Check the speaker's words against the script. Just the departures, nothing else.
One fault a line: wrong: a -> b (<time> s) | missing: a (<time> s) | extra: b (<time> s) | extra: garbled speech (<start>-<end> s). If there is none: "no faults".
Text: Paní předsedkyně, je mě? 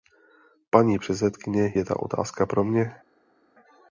extra: ta otázka pro (1.8 s)